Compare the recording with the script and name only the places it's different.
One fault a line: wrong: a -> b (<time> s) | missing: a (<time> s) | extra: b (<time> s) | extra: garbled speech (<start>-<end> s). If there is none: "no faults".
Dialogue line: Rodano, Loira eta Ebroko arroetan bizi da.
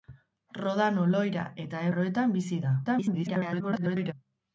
missing: Ebroko (1.9 s)
extra: garbled speech (2.8-4.1 s)